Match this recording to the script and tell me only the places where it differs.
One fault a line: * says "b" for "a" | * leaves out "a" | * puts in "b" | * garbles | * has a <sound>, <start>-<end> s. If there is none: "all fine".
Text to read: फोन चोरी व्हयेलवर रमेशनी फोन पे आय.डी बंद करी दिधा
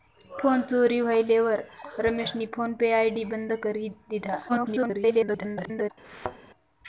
* garbles
* has a thud, 6.0-6.4 s